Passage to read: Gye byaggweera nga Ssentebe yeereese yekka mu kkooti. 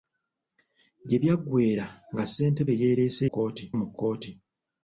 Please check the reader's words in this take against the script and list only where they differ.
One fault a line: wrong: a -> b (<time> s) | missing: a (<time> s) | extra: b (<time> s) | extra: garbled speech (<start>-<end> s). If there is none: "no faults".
wrong: yekka -> kkooti (3.2 s)